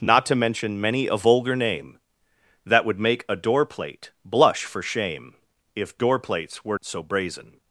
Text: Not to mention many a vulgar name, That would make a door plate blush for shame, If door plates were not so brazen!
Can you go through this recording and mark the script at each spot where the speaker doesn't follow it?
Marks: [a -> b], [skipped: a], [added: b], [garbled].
Not to mention many a vulgar name, That would make a door plate blush for shame, If door plates were [skipped: not] so brazen!